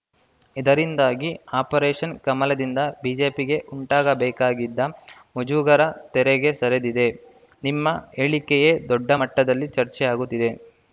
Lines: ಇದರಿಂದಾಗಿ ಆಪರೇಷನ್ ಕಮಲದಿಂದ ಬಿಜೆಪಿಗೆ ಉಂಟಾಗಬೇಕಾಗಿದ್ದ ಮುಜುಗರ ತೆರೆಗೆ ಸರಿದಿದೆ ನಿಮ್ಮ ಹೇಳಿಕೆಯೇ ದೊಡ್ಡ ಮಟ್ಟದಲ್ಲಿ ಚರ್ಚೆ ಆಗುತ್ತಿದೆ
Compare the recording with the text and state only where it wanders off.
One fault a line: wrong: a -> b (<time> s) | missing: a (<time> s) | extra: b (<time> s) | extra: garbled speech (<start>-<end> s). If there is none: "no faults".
no faults